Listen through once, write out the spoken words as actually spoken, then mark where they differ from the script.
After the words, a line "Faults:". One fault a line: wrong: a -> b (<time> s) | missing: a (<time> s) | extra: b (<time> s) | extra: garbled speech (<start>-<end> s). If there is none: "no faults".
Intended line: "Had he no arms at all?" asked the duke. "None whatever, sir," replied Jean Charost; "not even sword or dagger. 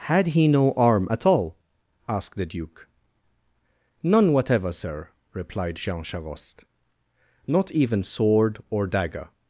"Had he no arm at all?" asked the duke. "None whatever, sir," replied Jean Charost; "not even sword or dagger.
Faults:
wrong: arms -> arm (0.7 s)